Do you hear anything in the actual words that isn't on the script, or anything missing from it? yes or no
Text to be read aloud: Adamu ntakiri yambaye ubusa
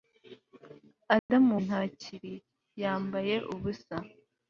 no